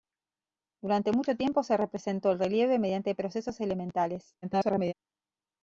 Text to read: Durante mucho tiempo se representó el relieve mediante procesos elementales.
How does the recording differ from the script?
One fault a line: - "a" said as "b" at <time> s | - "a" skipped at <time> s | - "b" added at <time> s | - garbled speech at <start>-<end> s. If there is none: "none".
- garbled speech at 4.4-4.9 s